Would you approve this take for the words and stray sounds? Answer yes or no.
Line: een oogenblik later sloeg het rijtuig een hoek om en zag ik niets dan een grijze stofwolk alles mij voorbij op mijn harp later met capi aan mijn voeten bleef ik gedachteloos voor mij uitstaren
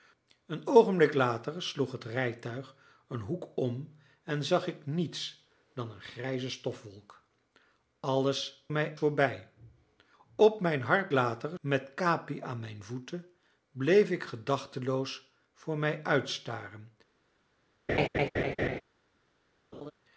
no